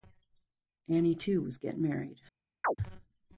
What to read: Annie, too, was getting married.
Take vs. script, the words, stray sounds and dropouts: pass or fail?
fail